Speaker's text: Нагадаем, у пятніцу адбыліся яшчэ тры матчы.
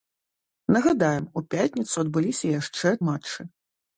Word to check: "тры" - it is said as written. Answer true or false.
false